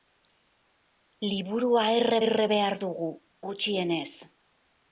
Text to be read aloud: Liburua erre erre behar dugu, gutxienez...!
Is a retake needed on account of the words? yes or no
no